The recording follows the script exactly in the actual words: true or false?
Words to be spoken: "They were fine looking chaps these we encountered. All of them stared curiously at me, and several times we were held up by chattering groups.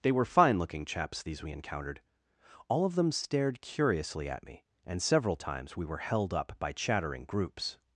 true